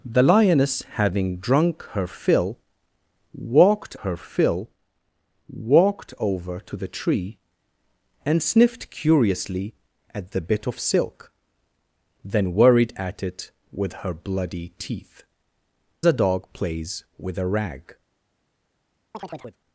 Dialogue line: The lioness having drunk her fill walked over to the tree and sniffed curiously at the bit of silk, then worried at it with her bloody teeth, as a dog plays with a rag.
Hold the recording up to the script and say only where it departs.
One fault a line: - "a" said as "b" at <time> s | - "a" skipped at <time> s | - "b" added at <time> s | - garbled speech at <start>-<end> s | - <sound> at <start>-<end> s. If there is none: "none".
- "her fill walked" added at 4.0 s
- "as" skipped at 15.2 s
- chirp at 19.1-19.6 s